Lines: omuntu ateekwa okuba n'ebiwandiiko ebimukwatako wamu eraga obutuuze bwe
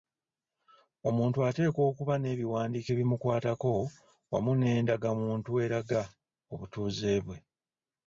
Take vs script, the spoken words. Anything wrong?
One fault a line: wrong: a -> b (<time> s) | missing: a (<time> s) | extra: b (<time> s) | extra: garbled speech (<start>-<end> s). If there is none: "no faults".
extra: n'endagamuntu (4.5 s)